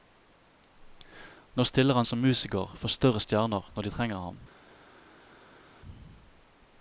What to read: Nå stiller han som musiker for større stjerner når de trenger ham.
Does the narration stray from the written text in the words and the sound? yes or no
no